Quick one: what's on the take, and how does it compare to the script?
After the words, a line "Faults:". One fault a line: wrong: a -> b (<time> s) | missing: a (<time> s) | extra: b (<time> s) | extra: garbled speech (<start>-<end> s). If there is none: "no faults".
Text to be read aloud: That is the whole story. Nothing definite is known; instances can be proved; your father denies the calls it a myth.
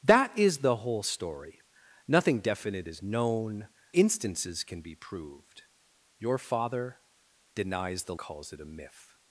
That is the whole story. Nothing definite is known; instances can be proved; your father denies the calls it a myth.
Faults:
no faults